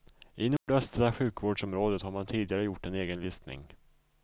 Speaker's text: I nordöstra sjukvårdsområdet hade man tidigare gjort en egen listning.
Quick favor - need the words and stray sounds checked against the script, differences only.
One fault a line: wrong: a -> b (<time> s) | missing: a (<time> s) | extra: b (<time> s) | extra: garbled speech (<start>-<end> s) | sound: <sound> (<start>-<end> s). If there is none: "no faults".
sound: dropout (0.6-0.7 s)
wrong: hade -> har (2.0 s)